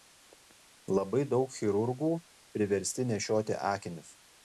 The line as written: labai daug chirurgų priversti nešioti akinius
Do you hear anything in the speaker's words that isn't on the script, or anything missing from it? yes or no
no